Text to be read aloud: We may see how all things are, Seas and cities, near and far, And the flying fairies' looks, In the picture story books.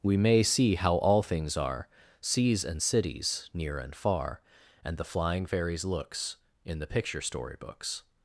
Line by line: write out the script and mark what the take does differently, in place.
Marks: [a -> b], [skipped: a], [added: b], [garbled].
We may see how all things are, Seas and cities, near and far, And the flying fairies' looks, In the picture story books.